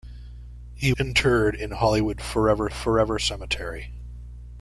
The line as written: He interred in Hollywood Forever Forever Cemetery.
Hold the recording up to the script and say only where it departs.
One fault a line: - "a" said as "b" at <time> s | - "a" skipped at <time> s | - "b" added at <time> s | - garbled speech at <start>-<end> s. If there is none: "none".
none